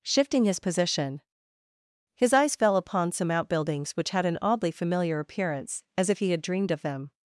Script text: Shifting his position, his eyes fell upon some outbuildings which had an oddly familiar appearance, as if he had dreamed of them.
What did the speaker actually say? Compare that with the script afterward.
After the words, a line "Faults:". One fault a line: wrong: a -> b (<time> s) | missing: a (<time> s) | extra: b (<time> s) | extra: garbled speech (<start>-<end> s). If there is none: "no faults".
Shifting his position, his eyes fell upon some outbuildings which had an oddly familiar appearance, as if he had dreamed of them.
Faults:
no faults